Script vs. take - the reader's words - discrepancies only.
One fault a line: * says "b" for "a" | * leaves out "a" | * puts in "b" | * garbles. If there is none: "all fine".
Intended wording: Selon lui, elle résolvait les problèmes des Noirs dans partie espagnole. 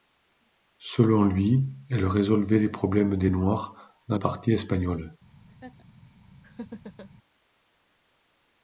all fine